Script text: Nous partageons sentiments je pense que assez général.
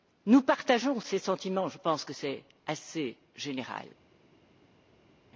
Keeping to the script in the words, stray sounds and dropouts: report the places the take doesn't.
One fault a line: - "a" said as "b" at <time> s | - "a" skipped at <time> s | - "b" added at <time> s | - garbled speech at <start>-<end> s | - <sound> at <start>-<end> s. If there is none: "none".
- "ces" added at 1.0 s
- "c'est" added at 2.1 s